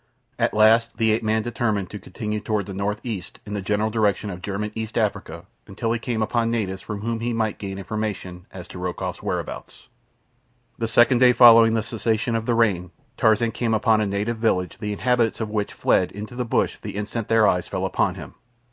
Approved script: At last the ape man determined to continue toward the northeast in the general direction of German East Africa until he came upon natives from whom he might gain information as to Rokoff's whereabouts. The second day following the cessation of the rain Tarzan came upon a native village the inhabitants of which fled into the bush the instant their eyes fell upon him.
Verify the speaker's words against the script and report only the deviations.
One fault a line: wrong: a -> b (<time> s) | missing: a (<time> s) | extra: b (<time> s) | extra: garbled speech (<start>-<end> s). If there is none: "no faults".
no faults